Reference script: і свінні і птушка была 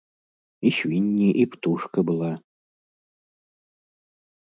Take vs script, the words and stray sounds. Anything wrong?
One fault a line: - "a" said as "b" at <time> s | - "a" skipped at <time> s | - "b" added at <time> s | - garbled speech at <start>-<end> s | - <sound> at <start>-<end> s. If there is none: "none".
none